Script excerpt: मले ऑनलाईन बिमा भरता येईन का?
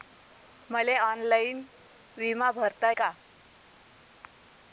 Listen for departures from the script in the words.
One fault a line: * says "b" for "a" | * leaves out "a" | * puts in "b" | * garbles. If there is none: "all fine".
* leaves out "येईन"